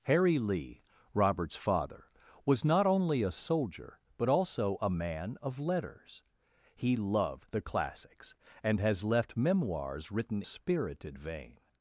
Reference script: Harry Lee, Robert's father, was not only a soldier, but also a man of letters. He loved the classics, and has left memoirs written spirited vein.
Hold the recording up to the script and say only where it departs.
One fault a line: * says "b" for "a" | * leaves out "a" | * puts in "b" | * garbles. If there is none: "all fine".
all fine